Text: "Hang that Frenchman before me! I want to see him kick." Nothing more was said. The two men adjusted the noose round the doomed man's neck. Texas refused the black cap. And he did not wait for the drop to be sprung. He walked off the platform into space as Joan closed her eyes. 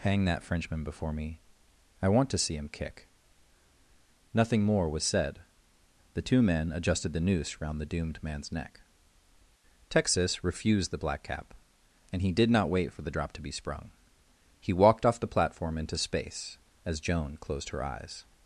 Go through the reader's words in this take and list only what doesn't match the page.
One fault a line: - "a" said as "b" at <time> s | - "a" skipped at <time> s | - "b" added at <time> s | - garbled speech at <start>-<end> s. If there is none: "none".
none